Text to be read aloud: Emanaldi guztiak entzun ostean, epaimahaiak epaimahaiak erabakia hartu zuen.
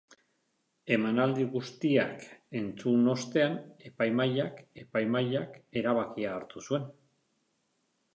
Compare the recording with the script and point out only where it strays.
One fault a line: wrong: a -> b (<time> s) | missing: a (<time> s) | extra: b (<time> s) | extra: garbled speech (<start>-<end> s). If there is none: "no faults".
no faults